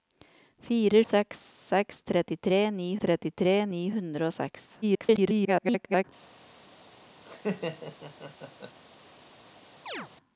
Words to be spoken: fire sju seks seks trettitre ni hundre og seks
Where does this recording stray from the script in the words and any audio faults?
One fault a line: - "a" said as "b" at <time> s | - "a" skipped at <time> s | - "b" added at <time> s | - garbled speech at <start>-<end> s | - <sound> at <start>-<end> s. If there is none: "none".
- "sju" said as "seks" at 1.1 s
- "seks" said as "trettitre ni" at 2.1 s
- garbled speech at 4.8-6.0 s
- laugh at 7.3-8.8 s
- chirp at 9.9-10.1 s